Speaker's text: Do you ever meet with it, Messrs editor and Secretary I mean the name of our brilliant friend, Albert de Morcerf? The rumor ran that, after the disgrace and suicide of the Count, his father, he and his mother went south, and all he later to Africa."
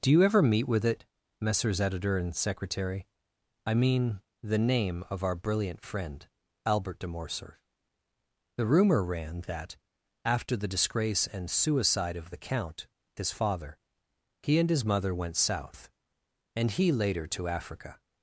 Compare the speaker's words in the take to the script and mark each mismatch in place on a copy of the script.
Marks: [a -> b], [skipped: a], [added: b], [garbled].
Do you ever meet with it, Messrs editor and Secretary I mean the name of our brilliant friend, Albert de Morcerf? The rumor ran that, after the disgrace and suicide of the Count, his father, he and his mother went south, and [skipped: all] he later to Africa."